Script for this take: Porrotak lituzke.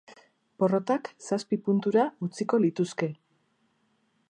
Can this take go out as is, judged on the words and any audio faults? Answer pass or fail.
fail